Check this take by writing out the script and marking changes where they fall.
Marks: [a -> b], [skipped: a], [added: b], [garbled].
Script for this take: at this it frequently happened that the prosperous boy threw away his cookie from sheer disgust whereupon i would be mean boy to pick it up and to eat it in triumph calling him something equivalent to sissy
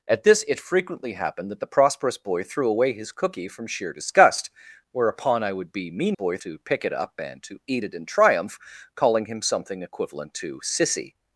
at this it frequently happened that the prosperous boy threw away his cookie from sheer disgust whereupon i would be mean boy to pick it up and to eat it in triumph calling him something equivalent to sissy